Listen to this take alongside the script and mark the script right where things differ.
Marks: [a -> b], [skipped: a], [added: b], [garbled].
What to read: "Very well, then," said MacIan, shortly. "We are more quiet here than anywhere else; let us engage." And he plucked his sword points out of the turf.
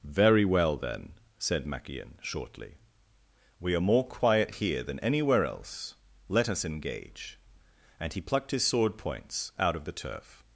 "Very well, then," said MacIan, shortly. "We are more quiet here than anywhere else; let us engage." And he plucked his sword points out of the turf.